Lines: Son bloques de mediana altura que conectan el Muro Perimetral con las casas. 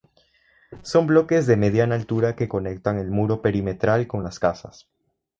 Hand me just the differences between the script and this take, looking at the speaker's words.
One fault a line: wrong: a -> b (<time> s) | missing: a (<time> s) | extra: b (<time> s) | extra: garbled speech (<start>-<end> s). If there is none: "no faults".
no faults